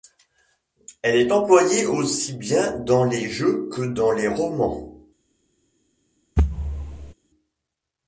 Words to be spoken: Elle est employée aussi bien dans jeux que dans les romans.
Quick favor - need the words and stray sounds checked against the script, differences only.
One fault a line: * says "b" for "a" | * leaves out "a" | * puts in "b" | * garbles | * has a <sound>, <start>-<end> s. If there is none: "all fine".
* puts in "les"
* has a thud, 6.4-7.1 s